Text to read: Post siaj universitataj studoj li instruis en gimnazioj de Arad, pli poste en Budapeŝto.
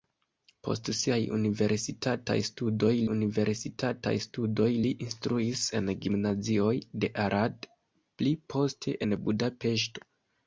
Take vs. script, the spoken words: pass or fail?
fail